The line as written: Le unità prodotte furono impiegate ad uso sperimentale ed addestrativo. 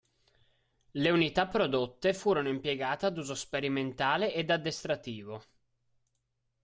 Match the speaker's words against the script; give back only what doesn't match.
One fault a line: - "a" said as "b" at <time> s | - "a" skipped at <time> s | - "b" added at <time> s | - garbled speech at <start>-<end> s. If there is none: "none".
none